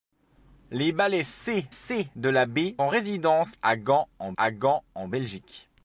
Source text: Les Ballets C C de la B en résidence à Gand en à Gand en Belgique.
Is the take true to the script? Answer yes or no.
yes